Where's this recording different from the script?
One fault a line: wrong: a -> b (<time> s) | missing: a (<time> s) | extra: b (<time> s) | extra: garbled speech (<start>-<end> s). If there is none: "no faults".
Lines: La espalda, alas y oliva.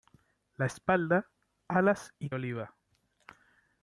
no faults